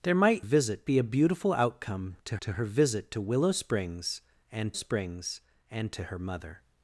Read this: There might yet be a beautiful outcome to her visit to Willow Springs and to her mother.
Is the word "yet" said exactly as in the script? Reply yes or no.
no